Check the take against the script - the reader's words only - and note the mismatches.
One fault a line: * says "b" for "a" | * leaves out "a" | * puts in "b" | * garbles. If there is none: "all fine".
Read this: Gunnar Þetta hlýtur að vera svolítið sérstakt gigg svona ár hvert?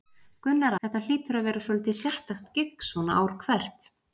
all fine